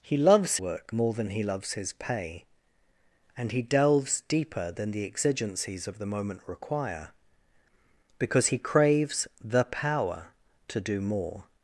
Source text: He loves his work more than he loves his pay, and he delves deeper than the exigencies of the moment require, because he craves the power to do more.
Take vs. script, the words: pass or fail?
fail